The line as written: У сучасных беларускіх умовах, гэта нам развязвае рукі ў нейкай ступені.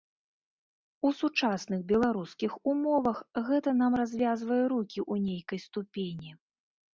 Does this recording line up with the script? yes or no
yes